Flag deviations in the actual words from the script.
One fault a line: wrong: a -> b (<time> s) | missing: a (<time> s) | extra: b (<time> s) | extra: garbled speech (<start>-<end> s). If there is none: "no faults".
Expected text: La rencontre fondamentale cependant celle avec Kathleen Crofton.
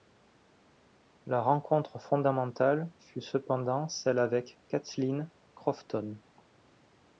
extra: fut (3.0 s)